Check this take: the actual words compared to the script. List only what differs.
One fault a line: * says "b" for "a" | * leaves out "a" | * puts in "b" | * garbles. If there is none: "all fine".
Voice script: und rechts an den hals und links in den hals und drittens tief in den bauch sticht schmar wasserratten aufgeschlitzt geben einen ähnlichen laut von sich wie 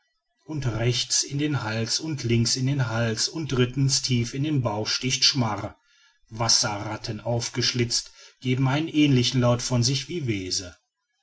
* says "in" for "an"